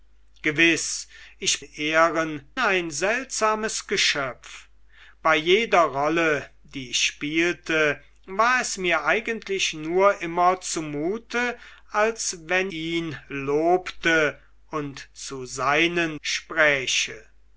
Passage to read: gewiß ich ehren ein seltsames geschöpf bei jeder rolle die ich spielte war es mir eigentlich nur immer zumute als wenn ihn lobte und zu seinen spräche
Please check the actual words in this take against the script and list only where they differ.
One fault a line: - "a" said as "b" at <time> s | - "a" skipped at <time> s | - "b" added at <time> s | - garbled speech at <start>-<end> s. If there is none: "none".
none